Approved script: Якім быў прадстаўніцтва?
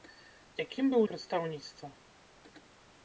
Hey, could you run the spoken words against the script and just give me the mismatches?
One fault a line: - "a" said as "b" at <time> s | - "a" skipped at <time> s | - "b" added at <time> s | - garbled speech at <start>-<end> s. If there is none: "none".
none